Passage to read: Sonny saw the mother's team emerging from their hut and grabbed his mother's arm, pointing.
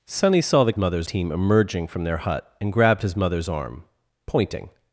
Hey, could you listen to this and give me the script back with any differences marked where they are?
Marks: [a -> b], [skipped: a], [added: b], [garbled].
Sonny saw the mother's team emerging from their hut and grabbed his mother's arm, pointing.